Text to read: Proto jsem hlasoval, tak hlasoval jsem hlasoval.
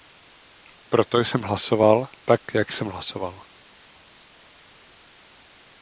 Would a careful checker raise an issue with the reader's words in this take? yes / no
yes